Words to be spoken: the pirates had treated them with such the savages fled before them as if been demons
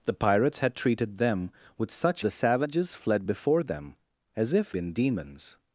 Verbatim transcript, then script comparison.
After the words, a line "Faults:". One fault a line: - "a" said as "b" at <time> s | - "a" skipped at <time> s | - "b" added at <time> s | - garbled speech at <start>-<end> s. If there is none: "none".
the pirates had treated them with such the savages fled before them as if been demons
Faults:
none